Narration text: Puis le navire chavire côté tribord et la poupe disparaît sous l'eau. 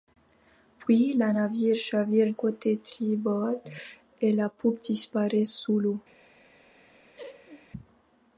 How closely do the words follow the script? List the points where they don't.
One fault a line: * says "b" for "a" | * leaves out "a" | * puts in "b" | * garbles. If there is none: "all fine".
all fine